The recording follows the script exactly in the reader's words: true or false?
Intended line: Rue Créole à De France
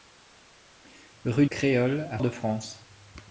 true